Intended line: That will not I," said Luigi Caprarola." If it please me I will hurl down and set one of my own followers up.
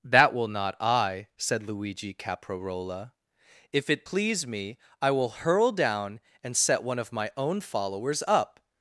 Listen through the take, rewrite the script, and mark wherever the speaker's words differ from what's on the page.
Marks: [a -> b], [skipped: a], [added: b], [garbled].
That will not I," said Luigi Caprarola." If it please me I will hurl down and set one of my own followers up.